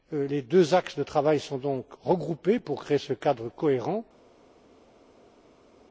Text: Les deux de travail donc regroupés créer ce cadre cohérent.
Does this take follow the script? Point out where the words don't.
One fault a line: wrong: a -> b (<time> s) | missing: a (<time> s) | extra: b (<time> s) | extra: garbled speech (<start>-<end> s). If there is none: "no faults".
extra: axes (0.7 s)
extra: sont (1.4 s)
extra: pour (2.6 s)